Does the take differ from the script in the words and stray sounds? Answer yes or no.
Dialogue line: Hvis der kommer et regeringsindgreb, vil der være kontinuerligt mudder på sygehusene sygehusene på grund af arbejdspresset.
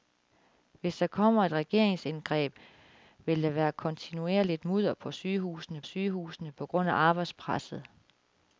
no